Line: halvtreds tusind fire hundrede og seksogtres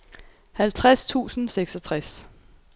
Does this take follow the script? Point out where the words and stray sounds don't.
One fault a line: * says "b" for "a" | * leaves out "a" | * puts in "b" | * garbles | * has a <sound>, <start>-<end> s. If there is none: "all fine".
* leaves out "fire hundrede og"